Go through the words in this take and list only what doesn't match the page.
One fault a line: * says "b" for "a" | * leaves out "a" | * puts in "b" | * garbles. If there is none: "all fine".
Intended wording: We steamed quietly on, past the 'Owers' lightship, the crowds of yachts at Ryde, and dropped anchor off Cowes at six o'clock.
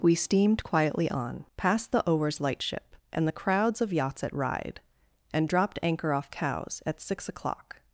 * puts in "and"